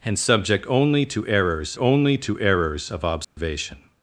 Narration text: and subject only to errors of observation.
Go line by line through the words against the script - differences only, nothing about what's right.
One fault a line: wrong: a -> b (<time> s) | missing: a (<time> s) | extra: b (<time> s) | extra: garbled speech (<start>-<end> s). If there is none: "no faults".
extra: only to errors (1.8 s)